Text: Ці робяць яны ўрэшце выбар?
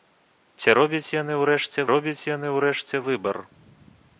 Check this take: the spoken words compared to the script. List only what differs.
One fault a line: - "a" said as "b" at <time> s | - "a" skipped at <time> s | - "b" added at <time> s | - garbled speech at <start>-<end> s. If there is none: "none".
- "робяць яны ўрэшце" added at 1.9 s